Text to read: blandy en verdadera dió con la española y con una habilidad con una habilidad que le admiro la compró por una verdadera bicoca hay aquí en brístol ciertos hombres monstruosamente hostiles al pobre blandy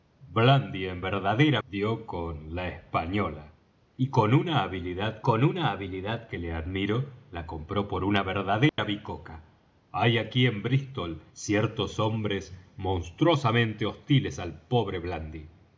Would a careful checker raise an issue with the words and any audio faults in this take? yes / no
yes